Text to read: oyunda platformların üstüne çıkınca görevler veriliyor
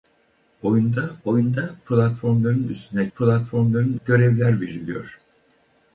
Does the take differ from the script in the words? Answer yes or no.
yes